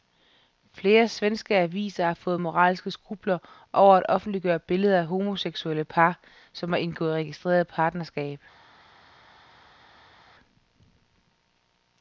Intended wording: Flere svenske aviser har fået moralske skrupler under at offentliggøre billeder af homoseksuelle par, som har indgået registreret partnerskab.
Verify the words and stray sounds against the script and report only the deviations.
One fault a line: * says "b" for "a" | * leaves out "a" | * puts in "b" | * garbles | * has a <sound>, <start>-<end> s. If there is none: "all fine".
* says "over" for "under"